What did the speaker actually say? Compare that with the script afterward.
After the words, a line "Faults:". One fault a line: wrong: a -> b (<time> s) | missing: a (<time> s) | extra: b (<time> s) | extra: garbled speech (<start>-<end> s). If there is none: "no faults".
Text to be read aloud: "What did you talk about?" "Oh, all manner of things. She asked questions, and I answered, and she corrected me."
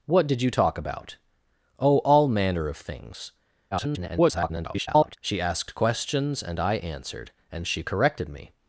"What did you talk about?" "Oh, all manner of things. [garbled] She asked questions, and I answered, and she corrected me."
Faults:
extra: garbled speech (3.7-5.2 s)